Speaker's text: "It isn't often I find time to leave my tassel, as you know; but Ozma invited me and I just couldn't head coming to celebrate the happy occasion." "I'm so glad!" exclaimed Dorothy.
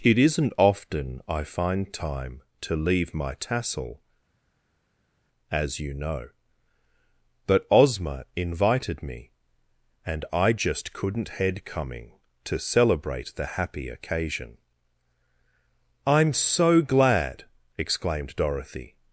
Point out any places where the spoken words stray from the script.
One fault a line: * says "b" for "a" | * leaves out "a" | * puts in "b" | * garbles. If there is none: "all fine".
all fine